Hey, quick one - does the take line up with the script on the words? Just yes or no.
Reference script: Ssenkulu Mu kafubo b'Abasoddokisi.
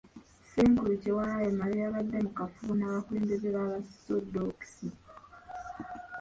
no